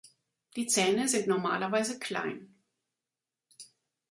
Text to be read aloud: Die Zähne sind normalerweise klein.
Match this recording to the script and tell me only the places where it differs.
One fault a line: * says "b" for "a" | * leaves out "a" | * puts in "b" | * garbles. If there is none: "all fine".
all fine